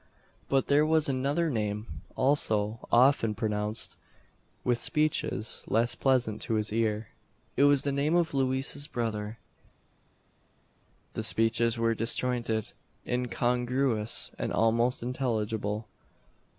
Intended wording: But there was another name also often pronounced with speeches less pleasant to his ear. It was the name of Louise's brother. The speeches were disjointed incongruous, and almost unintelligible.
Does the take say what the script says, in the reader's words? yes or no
yes